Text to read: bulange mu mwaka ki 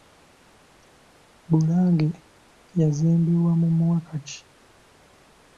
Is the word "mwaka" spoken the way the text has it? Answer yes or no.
yes